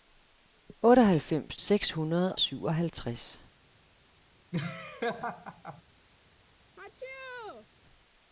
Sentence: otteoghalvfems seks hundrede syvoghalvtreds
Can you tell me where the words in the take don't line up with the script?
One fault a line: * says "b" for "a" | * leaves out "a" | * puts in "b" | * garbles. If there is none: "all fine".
all fine